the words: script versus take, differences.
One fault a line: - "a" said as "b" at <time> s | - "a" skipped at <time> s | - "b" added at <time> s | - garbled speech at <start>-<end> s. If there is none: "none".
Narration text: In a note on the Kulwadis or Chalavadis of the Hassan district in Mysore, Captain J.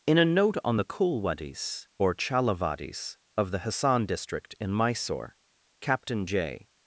none